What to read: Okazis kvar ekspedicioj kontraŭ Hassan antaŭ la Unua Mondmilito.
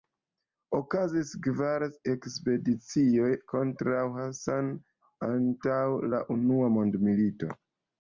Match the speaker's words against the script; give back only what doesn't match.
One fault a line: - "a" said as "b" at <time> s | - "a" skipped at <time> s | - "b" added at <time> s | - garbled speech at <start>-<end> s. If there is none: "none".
none